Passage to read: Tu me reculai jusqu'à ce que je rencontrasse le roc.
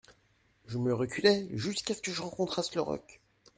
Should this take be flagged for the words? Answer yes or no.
yes